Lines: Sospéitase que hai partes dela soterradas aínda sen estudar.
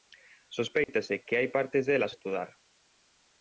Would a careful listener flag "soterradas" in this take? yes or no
yes